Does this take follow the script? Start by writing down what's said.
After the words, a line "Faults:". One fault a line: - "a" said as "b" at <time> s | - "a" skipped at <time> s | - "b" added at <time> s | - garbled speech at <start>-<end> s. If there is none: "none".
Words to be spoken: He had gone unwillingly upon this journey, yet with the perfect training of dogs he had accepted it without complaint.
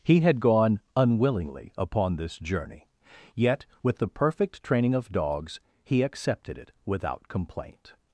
He had gone unwillingly upon this journey, yet with the perfect training of dogs he accepted it without complaint.
Faults:
- "had" skipped at 6.0 s